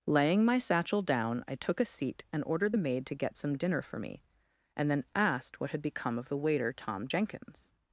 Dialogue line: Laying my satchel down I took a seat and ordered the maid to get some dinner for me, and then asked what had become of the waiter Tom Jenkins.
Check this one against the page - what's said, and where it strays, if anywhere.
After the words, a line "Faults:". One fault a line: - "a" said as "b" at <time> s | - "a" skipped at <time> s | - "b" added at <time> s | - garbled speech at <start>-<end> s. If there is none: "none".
Laying my satchel down I took a seat and ordered the maid to get some dinner for me, and then asked what had become of the waiter Tom Jenkins.
Faults:
none